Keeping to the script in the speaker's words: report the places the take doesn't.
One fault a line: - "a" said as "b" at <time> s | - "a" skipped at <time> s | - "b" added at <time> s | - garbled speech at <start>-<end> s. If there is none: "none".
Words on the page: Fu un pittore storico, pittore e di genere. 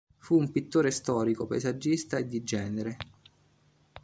- "pittore" said as "paesaggista" at 1.4 s